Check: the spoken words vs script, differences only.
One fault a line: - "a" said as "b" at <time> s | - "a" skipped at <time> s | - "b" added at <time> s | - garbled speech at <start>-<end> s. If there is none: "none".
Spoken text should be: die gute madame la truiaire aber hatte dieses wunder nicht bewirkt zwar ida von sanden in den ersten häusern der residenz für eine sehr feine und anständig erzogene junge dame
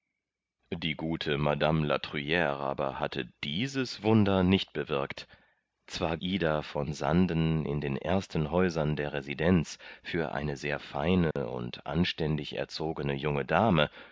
none